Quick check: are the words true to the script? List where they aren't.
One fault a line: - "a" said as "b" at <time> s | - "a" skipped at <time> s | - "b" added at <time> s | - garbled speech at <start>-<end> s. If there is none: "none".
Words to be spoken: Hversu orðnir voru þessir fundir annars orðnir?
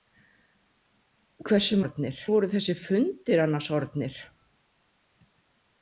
none